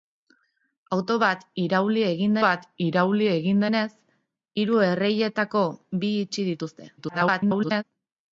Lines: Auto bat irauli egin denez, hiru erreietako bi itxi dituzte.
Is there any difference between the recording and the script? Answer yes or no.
yes